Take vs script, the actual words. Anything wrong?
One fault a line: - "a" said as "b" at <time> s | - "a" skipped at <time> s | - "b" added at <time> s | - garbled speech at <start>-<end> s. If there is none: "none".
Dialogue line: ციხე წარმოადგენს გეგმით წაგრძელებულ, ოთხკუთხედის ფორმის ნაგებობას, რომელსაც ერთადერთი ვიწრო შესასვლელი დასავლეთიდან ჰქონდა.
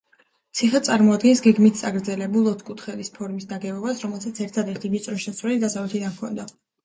none